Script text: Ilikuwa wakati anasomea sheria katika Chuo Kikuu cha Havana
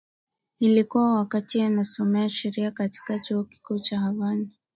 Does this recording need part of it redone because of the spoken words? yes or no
no